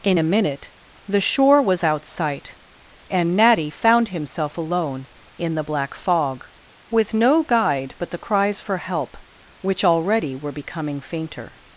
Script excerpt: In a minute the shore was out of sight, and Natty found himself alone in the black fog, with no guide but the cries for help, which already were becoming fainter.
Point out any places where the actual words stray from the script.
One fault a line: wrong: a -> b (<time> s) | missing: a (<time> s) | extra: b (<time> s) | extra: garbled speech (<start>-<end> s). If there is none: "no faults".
missing: of (2.0 s)